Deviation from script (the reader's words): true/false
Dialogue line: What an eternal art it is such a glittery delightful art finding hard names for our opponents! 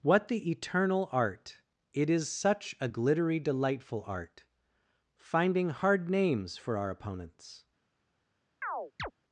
true